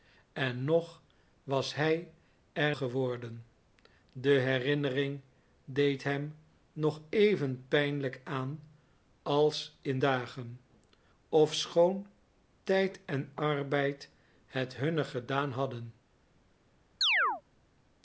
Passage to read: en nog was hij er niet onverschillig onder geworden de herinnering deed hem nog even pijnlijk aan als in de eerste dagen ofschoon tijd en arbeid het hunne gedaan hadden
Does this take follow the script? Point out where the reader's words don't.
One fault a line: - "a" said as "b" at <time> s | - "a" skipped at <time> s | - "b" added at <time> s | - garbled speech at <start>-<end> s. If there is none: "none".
- "niet onverschillig onder" skipped at 2.8 s
- "de eerste" skipped at 10.0 s